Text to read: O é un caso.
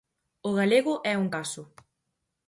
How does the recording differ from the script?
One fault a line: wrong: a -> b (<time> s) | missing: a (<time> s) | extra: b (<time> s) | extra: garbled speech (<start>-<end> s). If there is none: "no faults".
extra: galego (0.6 s)